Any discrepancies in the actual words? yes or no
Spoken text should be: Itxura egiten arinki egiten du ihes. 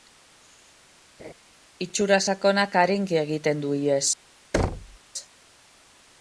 yes